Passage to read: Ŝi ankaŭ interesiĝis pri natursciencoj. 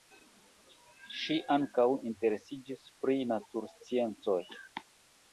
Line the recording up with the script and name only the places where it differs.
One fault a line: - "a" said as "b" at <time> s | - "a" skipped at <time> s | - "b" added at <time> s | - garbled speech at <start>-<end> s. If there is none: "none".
none